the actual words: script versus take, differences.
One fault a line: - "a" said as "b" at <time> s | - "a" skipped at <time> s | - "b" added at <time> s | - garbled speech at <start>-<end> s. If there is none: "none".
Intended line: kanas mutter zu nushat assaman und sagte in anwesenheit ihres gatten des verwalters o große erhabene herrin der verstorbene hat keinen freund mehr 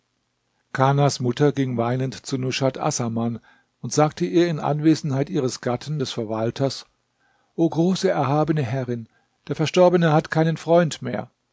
- "ging weinend" added at 1.5 s
- "ihr" added at 4.2 s